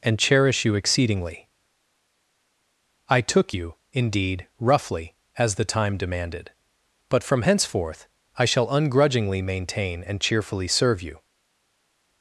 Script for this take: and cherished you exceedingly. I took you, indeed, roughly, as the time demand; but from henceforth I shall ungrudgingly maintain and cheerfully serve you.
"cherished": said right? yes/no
no